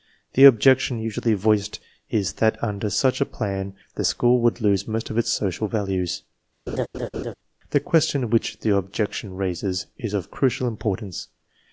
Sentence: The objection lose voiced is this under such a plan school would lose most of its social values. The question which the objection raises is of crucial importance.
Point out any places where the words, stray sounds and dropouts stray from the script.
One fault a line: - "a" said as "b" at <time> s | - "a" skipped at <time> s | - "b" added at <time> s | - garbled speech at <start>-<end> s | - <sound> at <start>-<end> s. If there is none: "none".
- "lose" said as "usually" at 1.0 s
- "this" said as "that" at 2.4 s
- "the" added at 3.9 s
- laugh at 6.7-7.3 s